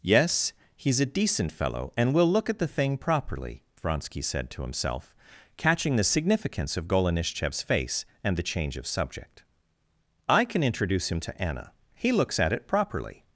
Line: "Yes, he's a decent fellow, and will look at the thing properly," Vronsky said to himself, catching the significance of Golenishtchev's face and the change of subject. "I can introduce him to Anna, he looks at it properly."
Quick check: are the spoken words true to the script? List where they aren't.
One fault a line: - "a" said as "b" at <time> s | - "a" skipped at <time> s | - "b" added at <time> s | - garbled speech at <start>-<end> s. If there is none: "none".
none